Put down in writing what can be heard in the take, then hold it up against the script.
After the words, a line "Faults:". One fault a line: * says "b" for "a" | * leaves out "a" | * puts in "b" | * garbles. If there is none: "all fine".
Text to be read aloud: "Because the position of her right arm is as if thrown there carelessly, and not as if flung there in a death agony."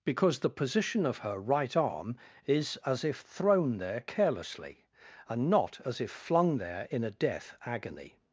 "Because the position of her right arm is as if thrown there carelessly, and not as if flung there in a death agony."
Faults:
all fine